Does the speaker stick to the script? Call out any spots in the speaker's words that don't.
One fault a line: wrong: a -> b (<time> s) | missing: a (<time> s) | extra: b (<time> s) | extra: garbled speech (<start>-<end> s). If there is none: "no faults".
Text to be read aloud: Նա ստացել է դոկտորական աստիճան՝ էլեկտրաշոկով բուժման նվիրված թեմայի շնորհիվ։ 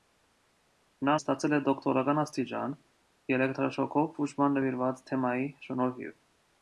no faults